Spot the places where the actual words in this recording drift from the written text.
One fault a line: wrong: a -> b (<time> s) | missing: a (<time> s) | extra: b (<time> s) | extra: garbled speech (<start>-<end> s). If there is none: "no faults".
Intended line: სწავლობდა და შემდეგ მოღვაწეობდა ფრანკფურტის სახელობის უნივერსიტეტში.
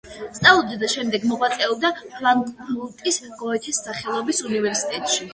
extra: გოეთეს (3.4 s)